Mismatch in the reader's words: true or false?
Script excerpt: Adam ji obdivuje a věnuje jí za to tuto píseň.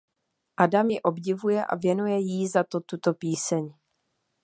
false